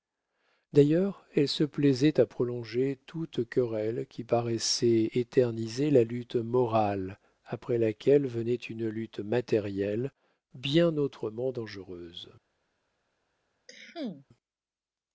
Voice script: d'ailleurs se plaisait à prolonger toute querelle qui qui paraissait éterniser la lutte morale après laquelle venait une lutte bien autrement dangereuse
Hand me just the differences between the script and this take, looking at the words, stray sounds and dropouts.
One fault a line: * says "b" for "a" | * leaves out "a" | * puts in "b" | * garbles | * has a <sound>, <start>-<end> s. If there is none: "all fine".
* puts in "elle"
* leaves out "qui"
* puts in "matérielle"
* has a cough, 13.7-14.3 s